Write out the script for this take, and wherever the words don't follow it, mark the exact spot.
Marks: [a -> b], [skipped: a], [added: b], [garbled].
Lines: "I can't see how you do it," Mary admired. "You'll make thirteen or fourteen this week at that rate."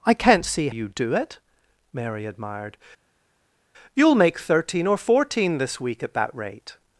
"I can't see [skipped: how] you do it," Mary admired. "You'll make thirteen or fourteen this week at that rate."